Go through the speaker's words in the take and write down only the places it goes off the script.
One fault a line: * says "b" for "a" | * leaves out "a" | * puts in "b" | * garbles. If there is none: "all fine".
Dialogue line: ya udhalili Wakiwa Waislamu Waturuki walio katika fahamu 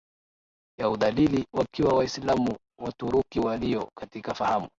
all fine